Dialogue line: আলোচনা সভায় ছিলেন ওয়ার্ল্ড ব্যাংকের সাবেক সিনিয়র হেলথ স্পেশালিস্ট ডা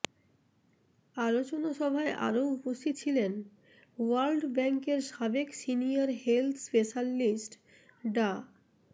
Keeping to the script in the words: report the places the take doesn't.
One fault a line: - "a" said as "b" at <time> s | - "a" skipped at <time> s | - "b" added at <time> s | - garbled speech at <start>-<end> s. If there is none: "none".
- "আরও উপস্থিত" added at 2.3 s